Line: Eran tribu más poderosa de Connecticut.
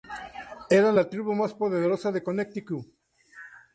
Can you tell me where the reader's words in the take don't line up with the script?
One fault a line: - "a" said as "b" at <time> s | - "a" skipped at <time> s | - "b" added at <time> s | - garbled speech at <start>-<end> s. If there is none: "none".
- "la" added at 1.0 s